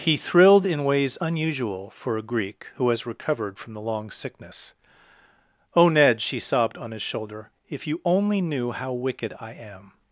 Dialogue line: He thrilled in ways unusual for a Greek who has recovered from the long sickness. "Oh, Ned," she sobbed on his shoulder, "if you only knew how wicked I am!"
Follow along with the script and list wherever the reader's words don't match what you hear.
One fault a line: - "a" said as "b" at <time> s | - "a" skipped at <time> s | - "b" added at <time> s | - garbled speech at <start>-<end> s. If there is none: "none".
none